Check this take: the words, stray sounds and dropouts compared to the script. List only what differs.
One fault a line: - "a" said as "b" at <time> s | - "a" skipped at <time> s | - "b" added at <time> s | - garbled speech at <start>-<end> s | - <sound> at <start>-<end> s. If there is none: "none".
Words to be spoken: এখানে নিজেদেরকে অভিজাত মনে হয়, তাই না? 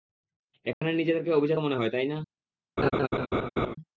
- dropout at 0.7-0.8 s
- laugh at 2.8-3.8 s